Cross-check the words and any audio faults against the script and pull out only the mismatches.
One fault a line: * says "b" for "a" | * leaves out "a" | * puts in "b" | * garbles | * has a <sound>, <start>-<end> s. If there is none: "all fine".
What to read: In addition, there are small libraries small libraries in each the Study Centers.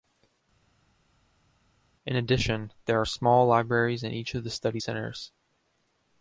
* leaves out "small libraries"
* puts in "of"